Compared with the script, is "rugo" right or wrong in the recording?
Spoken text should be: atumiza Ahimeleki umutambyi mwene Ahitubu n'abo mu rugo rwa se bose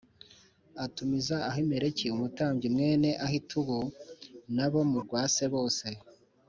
wrong